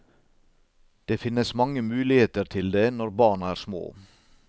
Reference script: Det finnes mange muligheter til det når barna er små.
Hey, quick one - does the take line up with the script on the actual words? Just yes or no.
yes